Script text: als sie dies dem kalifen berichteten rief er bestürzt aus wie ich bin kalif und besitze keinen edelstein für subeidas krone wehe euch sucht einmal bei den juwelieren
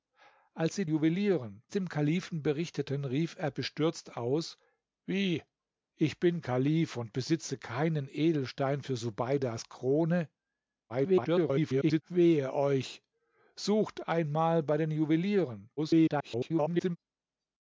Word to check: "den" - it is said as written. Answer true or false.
true